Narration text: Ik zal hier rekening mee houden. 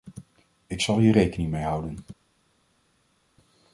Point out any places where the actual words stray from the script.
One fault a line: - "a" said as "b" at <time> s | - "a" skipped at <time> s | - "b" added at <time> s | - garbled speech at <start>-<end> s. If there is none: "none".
none